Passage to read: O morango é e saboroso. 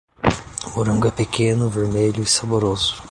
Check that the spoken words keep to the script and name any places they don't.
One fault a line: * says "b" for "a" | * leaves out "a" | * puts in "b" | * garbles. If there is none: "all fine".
* puts in "pequeno vermelho"